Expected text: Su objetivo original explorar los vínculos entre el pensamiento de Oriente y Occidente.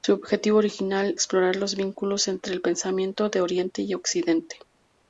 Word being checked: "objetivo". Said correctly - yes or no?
yes